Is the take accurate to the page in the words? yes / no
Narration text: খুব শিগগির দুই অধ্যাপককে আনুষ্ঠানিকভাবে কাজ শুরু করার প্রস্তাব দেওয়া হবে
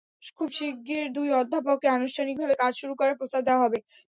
yes